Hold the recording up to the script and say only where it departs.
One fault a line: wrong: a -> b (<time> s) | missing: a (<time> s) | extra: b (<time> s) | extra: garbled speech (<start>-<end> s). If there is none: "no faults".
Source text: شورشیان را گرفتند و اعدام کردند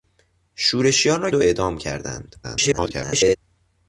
missing: گرفتند (1.3 s)
extra: garbled speech (2.4-3.4 s)